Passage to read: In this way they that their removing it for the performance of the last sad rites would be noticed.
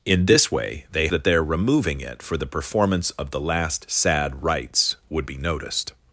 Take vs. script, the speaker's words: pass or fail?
pass